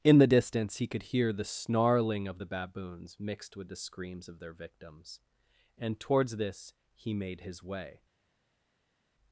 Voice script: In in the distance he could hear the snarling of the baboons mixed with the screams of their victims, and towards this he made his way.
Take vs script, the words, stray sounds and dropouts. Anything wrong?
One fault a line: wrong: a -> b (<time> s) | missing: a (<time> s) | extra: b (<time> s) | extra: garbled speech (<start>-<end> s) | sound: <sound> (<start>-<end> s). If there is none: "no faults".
missing: in (0.2 s)